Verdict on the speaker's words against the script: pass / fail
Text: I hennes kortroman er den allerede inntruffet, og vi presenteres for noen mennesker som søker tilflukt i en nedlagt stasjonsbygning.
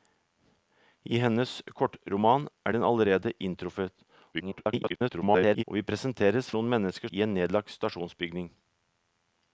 fail